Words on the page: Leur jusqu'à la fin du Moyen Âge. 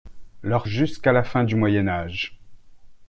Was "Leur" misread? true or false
false